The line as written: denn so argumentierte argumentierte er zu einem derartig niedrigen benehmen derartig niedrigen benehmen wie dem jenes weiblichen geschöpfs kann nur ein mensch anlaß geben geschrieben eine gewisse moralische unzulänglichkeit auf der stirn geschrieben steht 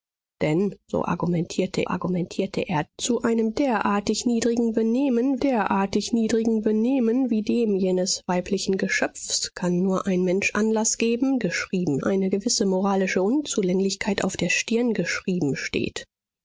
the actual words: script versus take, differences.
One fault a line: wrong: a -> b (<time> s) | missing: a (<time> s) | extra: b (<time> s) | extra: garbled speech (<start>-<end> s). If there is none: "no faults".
no faults